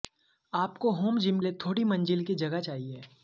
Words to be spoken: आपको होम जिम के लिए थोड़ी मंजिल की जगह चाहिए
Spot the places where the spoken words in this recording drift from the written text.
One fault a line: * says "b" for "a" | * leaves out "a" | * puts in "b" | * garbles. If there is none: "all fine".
* leaves out "के"